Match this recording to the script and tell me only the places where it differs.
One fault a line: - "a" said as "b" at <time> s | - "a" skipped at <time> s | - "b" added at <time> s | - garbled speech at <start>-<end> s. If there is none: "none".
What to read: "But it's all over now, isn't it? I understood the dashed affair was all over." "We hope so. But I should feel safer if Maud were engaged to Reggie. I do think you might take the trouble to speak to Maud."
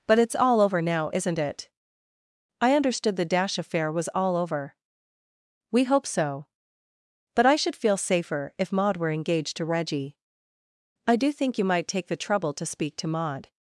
- "dashed" said as "dash" at 3.2 s